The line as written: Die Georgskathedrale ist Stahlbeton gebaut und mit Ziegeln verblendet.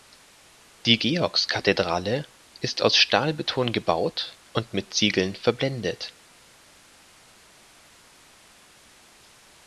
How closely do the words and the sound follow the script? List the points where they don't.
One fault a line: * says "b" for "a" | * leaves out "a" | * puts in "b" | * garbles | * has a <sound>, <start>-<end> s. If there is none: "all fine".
* puts in "aus"